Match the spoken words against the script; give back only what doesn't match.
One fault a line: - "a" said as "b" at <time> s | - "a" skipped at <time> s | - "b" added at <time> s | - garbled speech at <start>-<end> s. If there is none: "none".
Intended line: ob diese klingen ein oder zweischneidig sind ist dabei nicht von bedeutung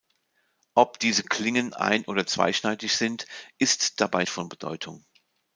- "nicht" skipped at 4.2 s